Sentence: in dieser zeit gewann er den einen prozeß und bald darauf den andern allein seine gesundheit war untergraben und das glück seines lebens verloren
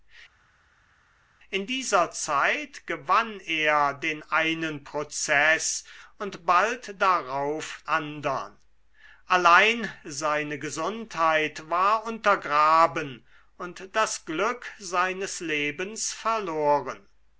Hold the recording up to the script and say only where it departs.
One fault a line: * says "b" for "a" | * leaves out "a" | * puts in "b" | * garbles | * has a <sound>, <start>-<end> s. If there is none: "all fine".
* leaves out "den"